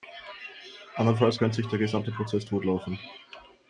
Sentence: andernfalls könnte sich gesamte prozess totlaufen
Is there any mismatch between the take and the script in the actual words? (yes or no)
yes